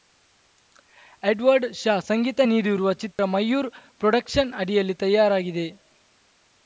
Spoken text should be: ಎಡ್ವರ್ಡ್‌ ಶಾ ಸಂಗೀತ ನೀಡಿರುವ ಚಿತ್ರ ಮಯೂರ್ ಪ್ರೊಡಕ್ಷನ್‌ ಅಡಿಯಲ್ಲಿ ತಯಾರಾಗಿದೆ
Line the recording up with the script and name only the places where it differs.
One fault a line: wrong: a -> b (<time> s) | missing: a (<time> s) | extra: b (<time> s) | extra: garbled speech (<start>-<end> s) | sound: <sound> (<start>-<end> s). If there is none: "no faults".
sound: dropout (3.1-3.2 s)